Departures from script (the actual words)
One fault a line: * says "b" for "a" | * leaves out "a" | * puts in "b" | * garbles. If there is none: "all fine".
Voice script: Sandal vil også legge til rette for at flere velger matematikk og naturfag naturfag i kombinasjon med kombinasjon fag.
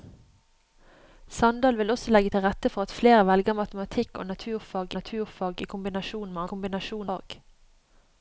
all fine